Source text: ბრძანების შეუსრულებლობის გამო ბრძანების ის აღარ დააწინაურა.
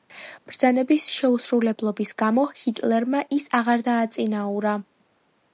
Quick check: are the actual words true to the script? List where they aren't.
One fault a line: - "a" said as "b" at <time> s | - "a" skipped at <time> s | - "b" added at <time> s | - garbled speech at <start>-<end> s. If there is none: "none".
- "ბრძანების" said as "ჰიტლერმა" at 2.6 s